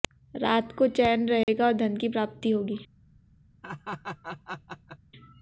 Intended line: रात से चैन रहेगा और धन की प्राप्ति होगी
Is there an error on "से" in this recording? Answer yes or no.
yes